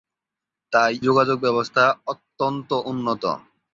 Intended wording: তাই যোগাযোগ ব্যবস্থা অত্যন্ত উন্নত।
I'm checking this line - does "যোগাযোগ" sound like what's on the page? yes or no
yes